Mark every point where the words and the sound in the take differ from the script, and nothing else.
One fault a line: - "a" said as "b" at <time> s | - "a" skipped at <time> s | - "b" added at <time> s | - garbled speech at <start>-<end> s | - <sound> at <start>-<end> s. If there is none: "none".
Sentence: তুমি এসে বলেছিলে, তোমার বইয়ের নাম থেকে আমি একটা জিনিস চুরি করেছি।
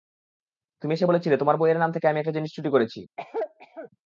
- cough at 3.2-3.9 s